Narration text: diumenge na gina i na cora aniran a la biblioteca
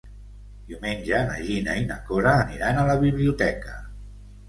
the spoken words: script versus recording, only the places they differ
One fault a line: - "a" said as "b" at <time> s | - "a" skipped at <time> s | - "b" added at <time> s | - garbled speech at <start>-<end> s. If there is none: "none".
none